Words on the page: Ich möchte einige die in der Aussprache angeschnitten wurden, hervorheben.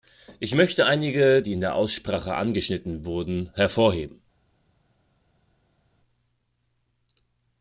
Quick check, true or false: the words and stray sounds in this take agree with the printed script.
true